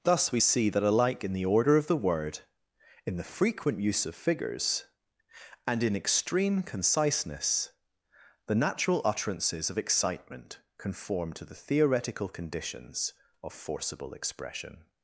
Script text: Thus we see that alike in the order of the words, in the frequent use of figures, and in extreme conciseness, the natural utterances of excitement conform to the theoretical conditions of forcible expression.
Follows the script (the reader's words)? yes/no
no